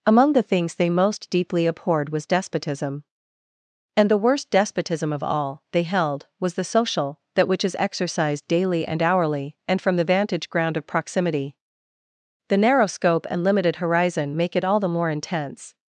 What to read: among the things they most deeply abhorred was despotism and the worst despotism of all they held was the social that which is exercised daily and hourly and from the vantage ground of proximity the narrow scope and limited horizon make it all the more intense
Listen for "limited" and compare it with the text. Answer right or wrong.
right